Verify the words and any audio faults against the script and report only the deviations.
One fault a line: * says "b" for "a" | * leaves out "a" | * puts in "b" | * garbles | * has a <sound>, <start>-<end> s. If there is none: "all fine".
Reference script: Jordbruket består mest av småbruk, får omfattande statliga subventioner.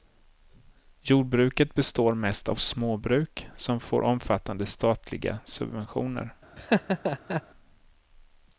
* puts in "som"
* has a laugh, 6.6-7.4 s